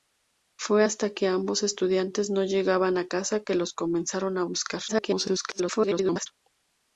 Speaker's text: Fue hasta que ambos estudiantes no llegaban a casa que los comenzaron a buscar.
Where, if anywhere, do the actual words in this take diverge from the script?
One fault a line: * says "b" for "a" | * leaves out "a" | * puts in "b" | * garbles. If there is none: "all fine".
* garbles